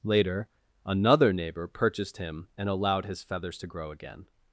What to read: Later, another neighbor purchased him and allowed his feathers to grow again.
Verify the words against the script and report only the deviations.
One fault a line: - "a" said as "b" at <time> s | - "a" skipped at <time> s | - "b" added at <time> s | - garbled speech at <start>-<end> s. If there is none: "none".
none